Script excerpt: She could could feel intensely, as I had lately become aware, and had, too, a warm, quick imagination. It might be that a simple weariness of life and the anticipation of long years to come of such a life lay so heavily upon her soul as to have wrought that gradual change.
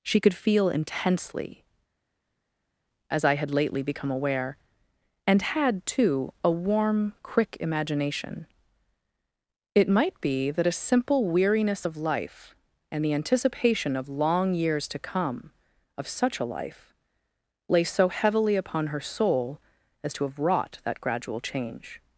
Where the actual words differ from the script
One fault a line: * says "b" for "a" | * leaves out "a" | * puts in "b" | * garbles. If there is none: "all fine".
* leaves out "could"